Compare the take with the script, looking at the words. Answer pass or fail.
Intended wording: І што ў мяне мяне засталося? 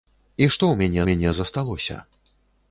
pass